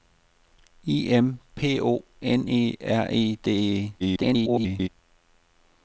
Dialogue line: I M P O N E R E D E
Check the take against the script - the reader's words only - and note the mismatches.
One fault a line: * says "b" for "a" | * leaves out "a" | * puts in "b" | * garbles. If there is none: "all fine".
* garbles